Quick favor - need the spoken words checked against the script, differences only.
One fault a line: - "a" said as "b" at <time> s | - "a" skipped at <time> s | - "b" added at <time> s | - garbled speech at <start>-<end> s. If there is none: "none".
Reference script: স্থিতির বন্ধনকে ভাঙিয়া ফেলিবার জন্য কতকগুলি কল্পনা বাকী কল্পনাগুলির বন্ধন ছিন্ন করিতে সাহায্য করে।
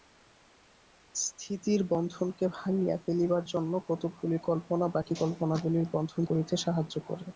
- "ছিন্ন" skipped at 6.2 s